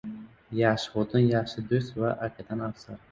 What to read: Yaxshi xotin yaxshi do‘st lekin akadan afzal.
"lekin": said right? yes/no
no